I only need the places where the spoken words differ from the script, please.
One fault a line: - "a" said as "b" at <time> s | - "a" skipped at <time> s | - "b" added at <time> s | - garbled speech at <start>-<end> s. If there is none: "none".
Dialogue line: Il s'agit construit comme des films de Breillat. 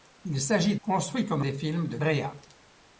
none